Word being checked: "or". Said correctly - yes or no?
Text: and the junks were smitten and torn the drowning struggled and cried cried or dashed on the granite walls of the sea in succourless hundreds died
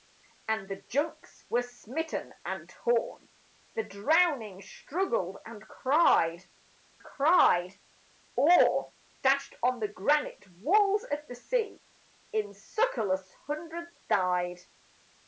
yes